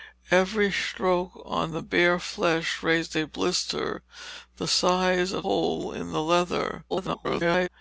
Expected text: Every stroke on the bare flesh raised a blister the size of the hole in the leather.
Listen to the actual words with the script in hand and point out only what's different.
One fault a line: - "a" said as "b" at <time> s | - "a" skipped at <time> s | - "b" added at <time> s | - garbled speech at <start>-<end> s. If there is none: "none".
- "the" skipped at 5.5 s
- garbled speech at 6.9-7.7 s